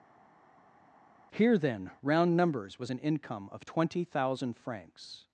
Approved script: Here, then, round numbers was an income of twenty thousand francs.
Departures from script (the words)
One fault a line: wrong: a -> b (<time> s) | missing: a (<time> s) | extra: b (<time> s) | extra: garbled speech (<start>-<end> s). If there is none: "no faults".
no faults